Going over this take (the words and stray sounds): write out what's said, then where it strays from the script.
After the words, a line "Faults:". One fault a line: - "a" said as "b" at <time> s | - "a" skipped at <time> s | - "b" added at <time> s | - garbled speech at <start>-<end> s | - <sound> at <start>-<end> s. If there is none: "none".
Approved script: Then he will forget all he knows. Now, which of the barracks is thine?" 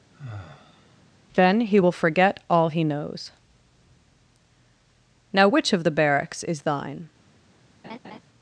Then he will forget all he knows. Now, which of the barracks is thine?"
Faults:
- sigh at 0.1-1.0 s
- laugh at 7.8-8.2 s